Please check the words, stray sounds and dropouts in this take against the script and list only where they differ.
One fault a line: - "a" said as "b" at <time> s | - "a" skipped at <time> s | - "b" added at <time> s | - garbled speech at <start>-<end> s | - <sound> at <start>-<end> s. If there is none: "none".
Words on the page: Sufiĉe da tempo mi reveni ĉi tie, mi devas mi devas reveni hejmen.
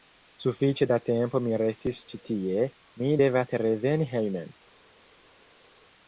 - "reveni" said as "restis" at 1.6 s
- "mi devas" skipped at 3.6 s